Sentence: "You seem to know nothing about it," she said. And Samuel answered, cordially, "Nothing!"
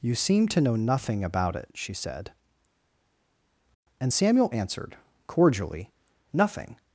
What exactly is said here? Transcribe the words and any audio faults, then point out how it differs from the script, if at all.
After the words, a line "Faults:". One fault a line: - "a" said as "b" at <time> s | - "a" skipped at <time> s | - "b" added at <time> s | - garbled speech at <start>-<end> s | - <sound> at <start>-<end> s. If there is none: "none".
"You seem to know nothing about it," she said. And Samuel answered, cordially, "Nothing!"
Faults:
none